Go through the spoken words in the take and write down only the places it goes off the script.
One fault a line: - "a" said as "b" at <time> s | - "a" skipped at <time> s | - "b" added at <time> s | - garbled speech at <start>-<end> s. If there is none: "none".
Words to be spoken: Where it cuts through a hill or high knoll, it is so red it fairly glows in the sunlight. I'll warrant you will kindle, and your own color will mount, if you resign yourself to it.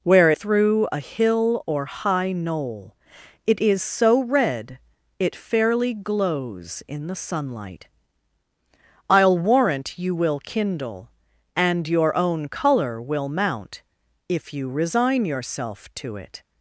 - "it cuts" skipped at 0.3 s